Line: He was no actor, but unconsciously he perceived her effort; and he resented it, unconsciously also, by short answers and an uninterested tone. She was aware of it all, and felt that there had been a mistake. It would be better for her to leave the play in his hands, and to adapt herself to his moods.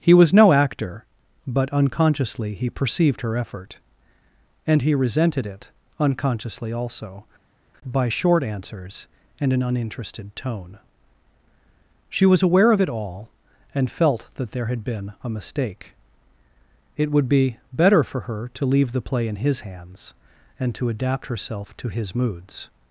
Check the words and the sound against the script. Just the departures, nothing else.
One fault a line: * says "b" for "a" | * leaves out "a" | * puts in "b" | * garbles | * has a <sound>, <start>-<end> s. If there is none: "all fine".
all fine